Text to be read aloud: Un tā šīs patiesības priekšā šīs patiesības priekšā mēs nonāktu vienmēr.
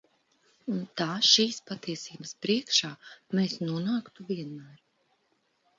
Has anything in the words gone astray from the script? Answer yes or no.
yes